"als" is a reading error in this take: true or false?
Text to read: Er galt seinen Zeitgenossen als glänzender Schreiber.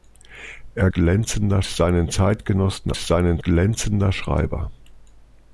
true